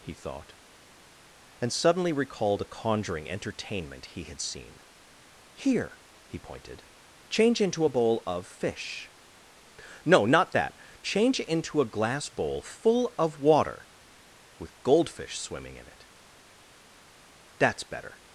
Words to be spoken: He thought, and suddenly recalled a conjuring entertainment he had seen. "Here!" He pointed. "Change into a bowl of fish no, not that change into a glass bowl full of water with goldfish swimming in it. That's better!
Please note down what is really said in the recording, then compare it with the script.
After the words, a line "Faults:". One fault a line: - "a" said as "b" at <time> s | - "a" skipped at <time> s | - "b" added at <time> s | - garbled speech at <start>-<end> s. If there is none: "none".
He thought, and suddenly recalled a conjuring entertainment he had seen. "Here!" He pointed. "Change into a bowl of fish no, not that change into a glass bowl full of water with goldfish swimming in it. That's better!
Faults:
none